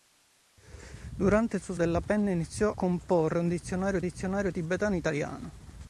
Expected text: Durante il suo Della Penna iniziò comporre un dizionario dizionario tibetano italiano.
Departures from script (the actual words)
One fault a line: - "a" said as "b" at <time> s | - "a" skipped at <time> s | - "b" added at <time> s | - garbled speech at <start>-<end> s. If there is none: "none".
none